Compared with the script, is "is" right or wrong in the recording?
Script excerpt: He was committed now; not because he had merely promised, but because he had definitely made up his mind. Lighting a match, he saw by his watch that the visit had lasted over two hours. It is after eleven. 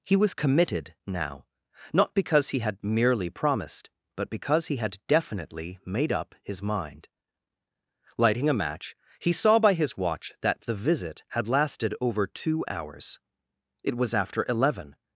wrong